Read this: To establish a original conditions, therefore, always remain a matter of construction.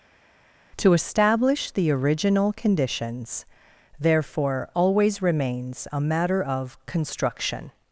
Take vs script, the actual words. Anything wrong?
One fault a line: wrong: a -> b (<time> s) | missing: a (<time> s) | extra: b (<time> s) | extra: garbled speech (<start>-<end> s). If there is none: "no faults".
wrong: a -> the (1.7 s)
wrong: remain -> remains (5.2 s)